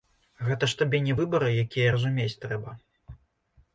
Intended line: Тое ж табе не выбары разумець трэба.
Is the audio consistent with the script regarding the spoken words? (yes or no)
no